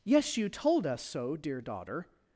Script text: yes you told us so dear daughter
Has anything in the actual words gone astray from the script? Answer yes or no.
no